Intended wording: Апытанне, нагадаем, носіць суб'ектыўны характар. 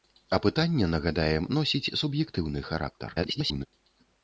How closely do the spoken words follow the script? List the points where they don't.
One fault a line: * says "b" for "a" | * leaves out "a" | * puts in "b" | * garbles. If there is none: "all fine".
* garbles